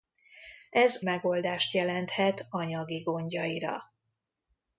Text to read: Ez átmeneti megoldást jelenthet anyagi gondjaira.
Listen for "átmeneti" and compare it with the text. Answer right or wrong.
wrong